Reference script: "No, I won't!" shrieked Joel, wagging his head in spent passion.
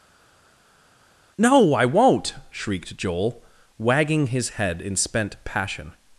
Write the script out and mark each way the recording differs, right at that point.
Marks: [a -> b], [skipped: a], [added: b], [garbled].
"No, I won't!" shrieked Joel, wagging his head in spent passion.